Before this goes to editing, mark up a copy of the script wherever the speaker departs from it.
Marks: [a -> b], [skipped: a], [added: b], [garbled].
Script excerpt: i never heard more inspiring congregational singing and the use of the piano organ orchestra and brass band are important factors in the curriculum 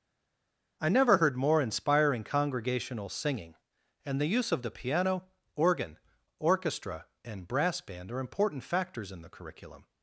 i never heard more inspiring congregational singing and the use of the piano organ orchestra and brass band are important factors in the curriculum